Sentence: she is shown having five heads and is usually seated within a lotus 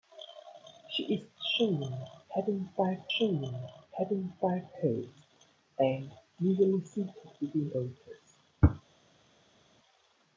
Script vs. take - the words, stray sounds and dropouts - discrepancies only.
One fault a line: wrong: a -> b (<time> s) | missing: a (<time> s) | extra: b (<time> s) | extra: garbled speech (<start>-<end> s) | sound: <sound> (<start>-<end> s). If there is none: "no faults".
extra: shown having five (3.2 s)
missing: is (6.1 s)
missing: a (7.7 s)